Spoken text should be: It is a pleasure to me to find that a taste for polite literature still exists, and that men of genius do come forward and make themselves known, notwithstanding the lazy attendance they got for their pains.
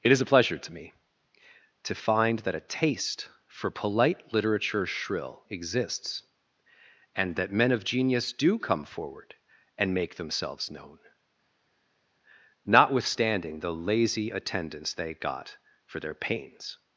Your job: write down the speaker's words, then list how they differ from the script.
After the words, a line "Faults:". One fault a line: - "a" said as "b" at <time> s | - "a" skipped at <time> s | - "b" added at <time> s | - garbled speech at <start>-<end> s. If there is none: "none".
It is a pleasure to me to find that a taste for polite literature shrill exists, and that men of genius do come forward and make themselves known, notwithstanding the lazy attendance they got for their pains.
Faults:
- "still" said as "shrill" at 4.9 s